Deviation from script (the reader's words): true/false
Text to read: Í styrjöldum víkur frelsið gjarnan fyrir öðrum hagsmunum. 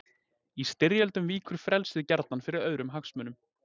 false